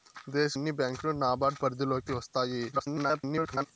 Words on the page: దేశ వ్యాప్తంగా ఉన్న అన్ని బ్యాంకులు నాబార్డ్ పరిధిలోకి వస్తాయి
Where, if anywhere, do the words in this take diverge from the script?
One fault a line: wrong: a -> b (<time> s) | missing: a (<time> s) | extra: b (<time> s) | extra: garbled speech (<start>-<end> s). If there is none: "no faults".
missing: వ్యాప్తంగా ఉన్న (0.5 s)
extra: garbled speech (2.7-3.7 s)